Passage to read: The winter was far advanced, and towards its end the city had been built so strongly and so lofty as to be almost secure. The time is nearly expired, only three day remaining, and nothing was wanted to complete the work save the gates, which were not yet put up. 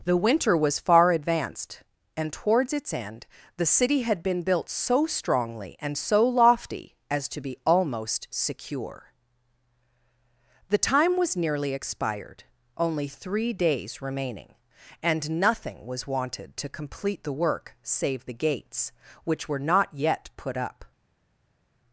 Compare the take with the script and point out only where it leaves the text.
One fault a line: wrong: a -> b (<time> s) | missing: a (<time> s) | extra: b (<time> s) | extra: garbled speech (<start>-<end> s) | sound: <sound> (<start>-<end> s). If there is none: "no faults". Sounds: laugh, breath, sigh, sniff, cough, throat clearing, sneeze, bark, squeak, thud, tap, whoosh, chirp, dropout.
wrong: is -> was (11.2 s)
wrong: day -> days (13.5 s)